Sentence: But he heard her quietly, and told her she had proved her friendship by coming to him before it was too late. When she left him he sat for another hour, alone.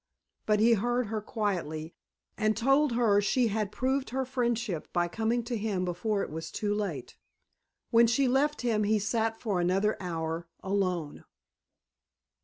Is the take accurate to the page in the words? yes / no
yes